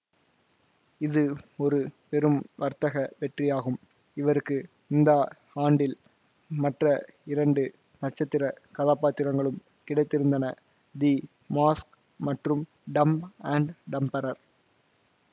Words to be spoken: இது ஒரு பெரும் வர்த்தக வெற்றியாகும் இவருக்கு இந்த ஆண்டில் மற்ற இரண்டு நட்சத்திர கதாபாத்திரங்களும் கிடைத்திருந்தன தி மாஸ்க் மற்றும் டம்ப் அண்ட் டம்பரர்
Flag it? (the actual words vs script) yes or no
no